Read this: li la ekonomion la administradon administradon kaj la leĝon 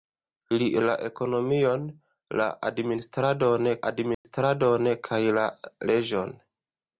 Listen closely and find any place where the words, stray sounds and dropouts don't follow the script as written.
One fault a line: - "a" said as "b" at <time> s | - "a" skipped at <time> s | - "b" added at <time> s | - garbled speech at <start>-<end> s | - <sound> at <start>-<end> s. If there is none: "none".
- dropout at 4.1-4.2 s